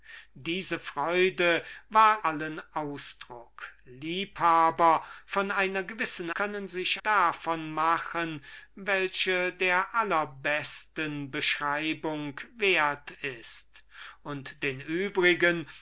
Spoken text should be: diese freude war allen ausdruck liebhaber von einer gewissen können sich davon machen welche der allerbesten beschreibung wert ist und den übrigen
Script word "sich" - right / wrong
right